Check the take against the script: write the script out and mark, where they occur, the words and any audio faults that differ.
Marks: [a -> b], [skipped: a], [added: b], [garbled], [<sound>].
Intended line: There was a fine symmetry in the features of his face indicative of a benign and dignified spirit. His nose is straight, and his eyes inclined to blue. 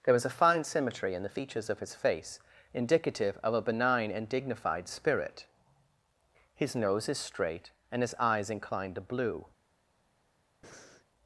There was a fine symmetry in the features of his face indicative of a benign and dignified spirit. His nose is straight, and his eyes inclined to blue. [breath]